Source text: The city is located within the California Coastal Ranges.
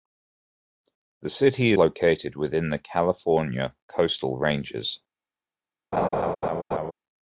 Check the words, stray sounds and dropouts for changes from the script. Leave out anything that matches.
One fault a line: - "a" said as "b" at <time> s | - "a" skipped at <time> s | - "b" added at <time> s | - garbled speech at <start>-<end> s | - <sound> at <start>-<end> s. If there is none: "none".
- "is" skipped at 1.7 s
- laugh at 5.9-6.9 s